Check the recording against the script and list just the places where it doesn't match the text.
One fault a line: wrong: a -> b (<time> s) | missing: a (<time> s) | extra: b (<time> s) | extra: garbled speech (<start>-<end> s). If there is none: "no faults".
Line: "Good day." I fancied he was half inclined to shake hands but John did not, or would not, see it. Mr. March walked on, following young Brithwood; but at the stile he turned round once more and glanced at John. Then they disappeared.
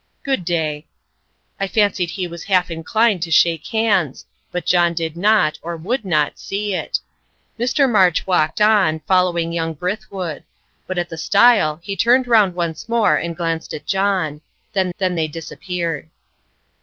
extra: then (15.0 s)